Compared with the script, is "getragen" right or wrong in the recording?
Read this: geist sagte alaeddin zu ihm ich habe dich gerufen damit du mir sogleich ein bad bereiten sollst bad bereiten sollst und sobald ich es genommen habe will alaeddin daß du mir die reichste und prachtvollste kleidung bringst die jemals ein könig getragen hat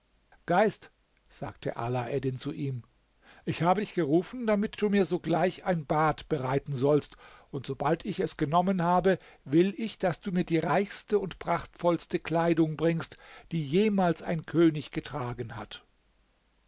right